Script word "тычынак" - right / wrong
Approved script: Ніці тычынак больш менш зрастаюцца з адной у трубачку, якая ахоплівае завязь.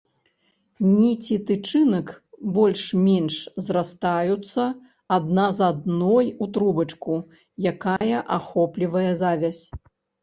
right